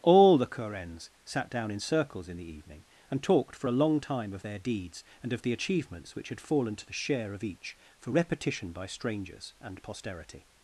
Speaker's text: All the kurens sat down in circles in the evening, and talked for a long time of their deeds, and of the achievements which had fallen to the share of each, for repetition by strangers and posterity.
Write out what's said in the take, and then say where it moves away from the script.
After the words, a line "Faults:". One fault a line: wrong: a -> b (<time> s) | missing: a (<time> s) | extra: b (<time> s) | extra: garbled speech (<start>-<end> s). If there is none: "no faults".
All the kurens sat down in circles in the evening, and talked for a long time of their deeds, and of the achievements which had fallen to the share of each, for repetition by strangers and posterity.
Faults:
no faults